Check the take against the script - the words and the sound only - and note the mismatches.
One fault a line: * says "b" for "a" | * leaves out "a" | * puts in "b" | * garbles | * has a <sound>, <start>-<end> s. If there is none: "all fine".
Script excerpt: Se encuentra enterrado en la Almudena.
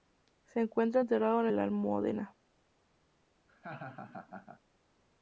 * has a laugh, 3.5-4.6 s